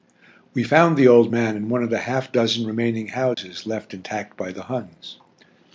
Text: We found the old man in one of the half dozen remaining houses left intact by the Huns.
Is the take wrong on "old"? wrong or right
right